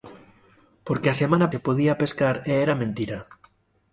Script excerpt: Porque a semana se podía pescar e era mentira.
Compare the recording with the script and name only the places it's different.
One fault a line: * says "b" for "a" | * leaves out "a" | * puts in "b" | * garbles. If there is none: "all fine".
all fine